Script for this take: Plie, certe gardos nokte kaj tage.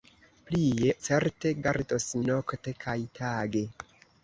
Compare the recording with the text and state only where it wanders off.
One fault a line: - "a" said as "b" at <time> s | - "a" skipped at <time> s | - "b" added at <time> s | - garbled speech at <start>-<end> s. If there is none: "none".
none